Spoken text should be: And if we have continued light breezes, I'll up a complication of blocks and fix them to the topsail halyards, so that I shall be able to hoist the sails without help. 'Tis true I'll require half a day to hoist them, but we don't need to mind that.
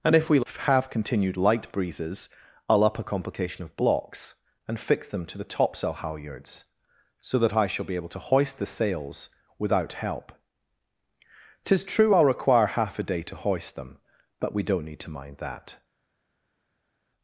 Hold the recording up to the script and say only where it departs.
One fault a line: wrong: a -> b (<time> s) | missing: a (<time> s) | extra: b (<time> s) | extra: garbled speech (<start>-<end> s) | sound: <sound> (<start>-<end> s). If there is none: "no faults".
no faults